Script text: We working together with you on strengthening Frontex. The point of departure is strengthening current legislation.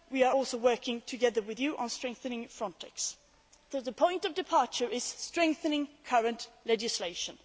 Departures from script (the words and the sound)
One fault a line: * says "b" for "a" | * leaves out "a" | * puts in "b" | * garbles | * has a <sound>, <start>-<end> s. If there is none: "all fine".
* puts in "are also"